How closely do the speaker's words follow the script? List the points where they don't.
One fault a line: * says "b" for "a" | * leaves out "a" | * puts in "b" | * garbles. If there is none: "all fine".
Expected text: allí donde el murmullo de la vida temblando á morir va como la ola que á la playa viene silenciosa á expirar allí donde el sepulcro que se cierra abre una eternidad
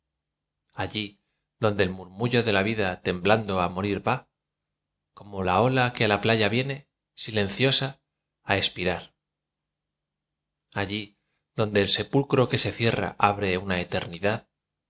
all fine